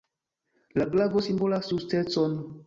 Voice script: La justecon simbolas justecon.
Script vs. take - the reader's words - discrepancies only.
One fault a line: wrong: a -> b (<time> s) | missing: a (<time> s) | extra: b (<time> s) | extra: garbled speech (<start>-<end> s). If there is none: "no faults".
wrong: justecon -> glavo (0.9 s)